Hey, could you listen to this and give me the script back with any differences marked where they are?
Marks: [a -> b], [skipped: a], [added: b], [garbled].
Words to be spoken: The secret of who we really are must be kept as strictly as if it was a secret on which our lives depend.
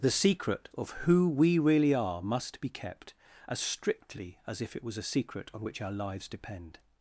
The secret of who we really are must be kept as strictly as if it was a secret on which our lives depend.